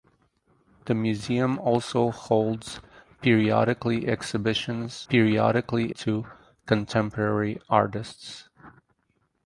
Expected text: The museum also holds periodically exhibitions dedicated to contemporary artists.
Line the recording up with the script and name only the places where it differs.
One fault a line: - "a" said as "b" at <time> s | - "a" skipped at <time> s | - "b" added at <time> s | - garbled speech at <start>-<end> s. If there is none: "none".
- "dedicated" said as "periodically" at 5.1 s